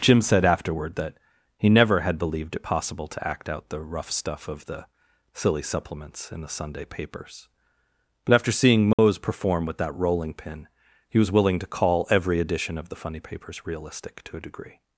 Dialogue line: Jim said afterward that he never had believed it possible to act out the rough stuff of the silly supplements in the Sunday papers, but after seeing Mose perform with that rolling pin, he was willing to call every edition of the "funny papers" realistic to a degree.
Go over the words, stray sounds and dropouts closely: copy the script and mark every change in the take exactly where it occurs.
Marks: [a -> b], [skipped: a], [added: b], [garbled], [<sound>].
Jim said afterward that he never had believed it possible to act out the rough stuff of the silly supplements in the Sunday papers, but after seeing Mose [dropout] perform with that rolling pin, he was willing to call every edition of the "funny papers" realistic to a degree.